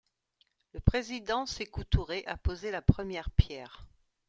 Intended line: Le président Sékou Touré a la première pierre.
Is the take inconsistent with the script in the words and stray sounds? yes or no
yes